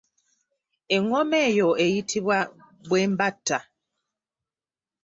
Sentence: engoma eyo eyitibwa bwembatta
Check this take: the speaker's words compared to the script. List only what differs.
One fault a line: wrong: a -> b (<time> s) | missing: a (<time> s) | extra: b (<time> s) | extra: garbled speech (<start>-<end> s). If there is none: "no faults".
no faults